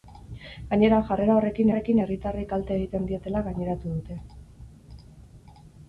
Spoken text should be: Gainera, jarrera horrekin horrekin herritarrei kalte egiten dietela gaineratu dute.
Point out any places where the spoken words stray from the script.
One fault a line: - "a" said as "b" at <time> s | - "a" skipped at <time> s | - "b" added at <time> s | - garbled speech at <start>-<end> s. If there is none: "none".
none